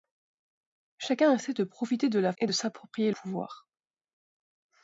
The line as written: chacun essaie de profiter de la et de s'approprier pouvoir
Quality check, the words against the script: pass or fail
pass